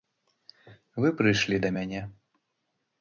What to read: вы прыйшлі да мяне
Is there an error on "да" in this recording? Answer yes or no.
no